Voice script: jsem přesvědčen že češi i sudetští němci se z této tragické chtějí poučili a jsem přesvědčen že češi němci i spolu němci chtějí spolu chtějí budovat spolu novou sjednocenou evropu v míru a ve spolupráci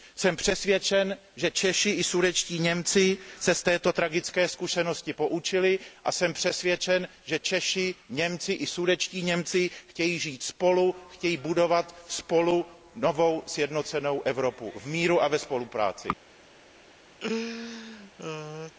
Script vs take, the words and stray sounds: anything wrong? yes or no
yes